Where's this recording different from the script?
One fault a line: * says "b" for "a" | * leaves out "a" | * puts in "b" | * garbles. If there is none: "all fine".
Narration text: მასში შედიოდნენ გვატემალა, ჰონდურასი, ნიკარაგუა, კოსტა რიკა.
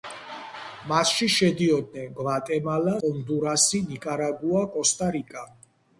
all fine